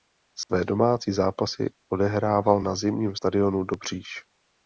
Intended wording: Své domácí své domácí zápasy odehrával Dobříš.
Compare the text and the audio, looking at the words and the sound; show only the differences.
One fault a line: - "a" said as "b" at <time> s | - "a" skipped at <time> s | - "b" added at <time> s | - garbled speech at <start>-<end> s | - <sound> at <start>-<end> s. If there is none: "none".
- dropout at 0.4-0.5 s
- "své domácí zápasy odehrával" said as "zápasy odehrával na zimním stadionu" at 1.1 s